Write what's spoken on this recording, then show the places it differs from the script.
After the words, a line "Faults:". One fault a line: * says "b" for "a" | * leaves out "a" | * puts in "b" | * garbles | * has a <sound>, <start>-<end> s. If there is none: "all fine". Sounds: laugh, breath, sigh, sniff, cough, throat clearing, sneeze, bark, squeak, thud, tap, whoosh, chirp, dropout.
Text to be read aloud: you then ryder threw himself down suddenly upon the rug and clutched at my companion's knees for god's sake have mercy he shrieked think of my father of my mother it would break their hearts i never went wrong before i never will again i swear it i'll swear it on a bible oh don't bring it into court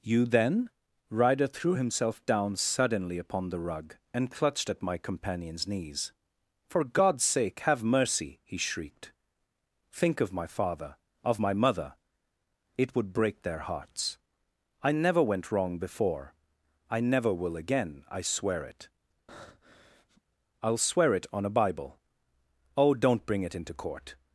you then ryder threw himself down suddenly upon the rug and clutched at my companion's knees for god's sake have mercy he shrieked think of my father of my mother it would break their hearts i never went wrong before i never will again i swear it i'll swear it on a bible oh don't bring it into court
Faults:
* has a breath, 19.3-20.2 s